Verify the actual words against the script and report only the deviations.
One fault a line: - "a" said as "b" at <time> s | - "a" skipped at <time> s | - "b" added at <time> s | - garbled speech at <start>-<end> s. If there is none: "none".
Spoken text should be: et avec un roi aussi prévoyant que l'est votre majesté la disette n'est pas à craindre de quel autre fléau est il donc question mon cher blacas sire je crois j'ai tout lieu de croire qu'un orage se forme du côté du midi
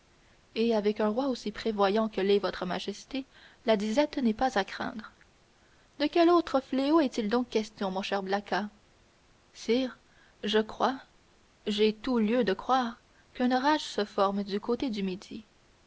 none